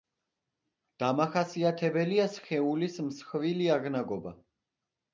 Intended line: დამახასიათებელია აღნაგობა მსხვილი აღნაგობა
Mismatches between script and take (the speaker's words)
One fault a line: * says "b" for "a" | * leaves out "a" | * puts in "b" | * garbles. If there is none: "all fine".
* says "სხეულის" for "აღნაგობა"